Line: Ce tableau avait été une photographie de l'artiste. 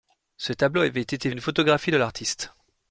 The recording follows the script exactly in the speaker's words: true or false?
true